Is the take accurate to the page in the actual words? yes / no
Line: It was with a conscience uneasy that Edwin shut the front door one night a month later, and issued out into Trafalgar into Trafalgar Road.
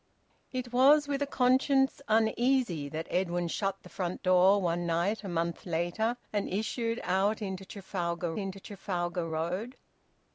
yes